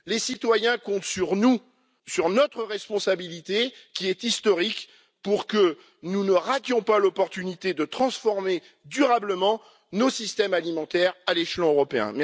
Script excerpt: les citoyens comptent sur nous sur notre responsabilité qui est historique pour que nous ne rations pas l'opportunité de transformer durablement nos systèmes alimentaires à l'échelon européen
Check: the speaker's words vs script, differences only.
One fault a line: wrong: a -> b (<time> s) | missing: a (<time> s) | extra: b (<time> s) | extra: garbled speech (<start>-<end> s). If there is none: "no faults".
no faults